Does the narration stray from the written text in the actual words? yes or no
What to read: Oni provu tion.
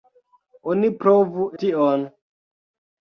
no